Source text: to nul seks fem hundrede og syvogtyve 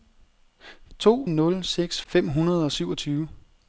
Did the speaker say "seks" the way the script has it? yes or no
yes